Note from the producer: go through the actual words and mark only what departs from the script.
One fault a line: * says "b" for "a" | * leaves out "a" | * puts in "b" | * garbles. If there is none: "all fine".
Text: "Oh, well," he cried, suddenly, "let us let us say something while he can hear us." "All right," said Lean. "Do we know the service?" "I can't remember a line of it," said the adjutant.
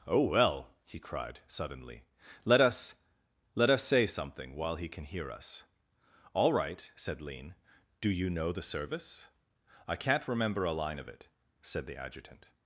* says "you" for "we"